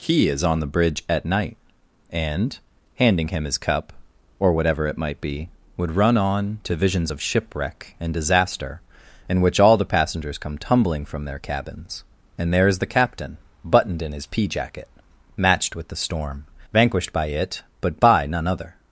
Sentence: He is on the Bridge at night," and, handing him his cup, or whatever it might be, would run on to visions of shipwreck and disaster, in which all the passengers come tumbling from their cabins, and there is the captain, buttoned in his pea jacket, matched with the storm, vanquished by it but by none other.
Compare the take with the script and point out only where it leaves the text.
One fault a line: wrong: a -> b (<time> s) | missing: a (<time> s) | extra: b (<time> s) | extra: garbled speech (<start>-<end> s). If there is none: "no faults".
no faults